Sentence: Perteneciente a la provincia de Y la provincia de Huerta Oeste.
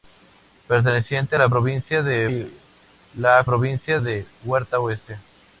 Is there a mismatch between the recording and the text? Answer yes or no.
no